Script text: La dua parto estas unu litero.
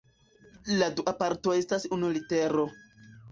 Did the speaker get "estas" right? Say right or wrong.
right